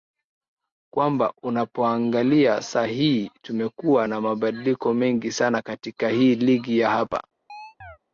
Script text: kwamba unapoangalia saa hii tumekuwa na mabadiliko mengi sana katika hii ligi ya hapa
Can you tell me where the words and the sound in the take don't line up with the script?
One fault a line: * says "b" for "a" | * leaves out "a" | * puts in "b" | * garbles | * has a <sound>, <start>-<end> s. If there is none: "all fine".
* has a chirp, 7.5-8.0 s